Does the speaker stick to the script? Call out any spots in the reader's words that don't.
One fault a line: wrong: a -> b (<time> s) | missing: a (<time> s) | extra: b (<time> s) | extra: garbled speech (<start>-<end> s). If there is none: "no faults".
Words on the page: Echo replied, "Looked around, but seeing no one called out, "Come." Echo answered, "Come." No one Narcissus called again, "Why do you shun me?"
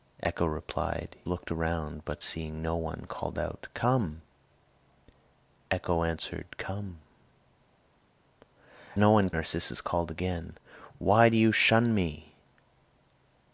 no faults